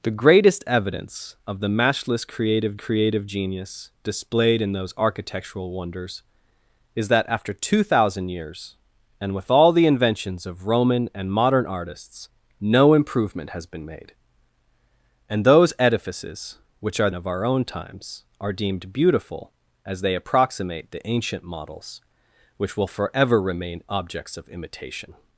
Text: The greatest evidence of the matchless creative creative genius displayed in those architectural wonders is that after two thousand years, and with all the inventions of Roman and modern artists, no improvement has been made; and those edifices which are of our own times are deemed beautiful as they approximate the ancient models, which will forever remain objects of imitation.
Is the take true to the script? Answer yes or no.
yes